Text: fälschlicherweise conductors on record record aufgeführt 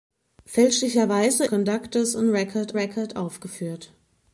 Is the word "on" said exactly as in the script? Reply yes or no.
yes